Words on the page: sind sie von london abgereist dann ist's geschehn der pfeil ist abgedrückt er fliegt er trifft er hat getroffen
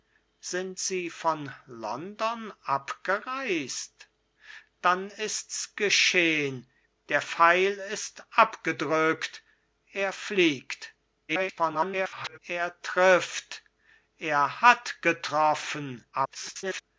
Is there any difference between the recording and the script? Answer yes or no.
yes